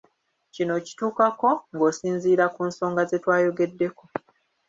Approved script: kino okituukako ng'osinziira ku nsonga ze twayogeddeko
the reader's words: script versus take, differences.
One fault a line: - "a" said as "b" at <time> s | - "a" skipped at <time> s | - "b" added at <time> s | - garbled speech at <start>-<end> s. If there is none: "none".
none